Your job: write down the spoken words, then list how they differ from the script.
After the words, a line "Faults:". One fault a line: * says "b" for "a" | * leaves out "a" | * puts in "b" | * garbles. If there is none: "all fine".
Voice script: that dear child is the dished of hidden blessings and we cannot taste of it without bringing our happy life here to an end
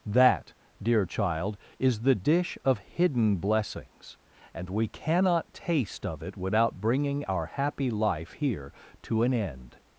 that dear child is the dish of hidden blessings and we cannot taste of it without bringing our happy life here to an end
Faults:
* says "dish" for "dished"